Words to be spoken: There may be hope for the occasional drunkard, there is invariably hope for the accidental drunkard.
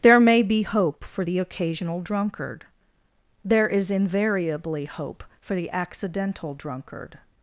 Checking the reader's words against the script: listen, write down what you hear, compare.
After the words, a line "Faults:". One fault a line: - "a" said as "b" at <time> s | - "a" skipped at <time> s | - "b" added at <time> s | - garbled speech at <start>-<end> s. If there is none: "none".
There may be hope for the occasional drunkard, there is invariably hope for the accidental drunkard.
Faults:
none